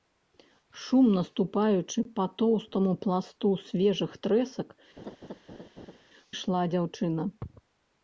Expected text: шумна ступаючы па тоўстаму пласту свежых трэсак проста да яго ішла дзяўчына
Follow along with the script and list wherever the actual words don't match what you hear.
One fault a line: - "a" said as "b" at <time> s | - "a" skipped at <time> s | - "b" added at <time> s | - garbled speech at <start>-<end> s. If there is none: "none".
- "проста да яго" skipped at 4.7 s